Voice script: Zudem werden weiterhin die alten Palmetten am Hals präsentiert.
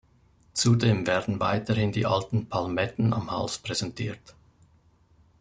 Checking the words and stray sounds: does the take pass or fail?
pass